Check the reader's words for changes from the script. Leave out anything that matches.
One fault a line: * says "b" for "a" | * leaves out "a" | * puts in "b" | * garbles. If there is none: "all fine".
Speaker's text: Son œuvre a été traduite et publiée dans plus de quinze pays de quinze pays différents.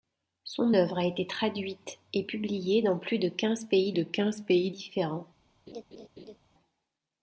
all fine